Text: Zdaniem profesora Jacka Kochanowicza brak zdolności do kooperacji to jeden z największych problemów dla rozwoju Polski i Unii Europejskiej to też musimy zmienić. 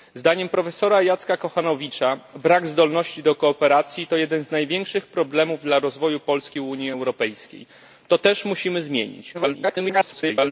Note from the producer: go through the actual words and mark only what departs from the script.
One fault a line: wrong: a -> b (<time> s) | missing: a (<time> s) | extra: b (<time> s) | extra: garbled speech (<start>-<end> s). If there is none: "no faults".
extra: garbled speech (9.3-10.5 s)